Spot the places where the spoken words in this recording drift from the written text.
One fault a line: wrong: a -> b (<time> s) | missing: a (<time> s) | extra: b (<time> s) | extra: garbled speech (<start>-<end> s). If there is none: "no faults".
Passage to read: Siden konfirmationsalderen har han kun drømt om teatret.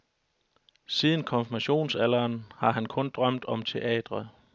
no faults